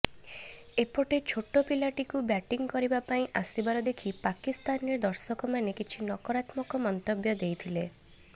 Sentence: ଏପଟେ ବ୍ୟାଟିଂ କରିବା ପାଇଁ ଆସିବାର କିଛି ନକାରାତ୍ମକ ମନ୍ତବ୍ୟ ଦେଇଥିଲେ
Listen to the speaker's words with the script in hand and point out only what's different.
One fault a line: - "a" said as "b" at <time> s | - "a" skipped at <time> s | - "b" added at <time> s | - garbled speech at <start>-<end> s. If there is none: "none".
- "ଛୋଟ ପିଲାଟିକୁ" added at 1.2 s
- "ଦେଖି ପାକିସ୍ତାନରେ ଦର୍ଶକମାନେ" added at 3.9 s